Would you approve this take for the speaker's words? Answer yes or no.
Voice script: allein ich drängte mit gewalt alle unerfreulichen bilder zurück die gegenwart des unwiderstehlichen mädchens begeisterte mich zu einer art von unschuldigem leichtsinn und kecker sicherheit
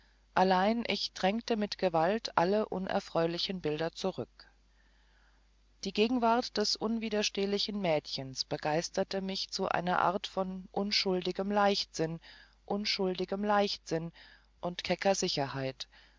no